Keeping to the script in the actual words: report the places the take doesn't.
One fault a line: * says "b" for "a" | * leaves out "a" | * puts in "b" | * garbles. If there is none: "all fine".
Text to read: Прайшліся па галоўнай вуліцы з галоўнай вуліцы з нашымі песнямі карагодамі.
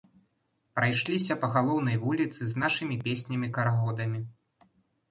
* leaves out "галоўнай вуліцы з"